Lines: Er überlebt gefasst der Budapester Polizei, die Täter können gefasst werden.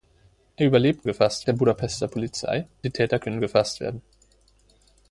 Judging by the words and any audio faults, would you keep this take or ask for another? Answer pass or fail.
pass